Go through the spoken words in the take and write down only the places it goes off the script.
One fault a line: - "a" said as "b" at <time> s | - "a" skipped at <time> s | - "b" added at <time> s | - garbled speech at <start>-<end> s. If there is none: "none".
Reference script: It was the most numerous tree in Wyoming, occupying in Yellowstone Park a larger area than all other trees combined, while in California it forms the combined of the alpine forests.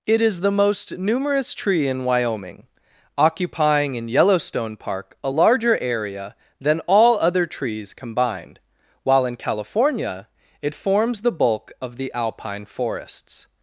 - "was" said as "is" at 0.2 s
- "combined" said as "bulk" at 11.3 s